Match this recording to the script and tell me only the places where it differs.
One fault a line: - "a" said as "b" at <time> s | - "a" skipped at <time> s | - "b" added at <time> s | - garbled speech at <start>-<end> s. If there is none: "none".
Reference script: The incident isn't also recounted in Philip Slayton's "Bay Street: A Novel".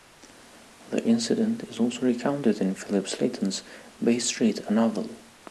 - "isn't" said as "is" at 1.7 s